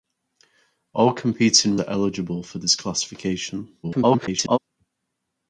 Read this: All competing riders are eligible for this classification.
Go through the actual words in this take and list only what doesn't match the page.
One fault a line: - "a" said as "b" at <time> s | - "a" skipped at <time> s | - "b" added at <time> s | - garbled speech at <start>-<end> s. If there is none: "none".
- "riders" skipped at 1.8 s
- garbled speech at 3.8-4.6 s